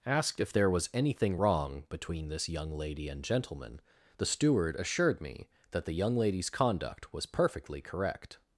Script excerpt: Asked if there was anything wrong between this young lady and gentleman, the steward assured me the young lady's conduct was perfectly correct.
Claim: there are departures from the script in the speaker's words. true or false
true